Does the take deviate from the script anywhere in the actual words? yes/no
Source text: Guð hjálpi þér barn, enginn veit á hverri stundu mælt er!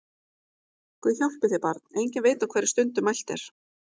no